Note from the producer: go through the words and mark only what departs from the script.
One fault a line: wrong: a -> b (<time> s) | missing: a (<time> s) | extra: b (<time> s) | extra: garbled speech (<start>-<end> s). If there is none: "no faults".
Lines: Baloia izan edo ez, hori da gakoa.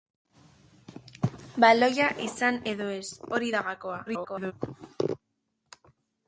extra: garbled speech (4.1-4.5 s)